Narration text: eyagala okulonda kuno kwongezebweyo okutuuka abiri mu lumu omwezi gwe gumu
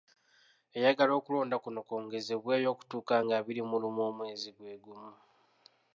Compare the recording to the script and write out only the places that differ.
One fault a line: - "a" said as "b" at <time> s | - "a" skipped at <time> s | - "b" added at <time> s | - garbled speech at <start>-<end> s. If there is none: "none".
- "nga" added at 3.2 s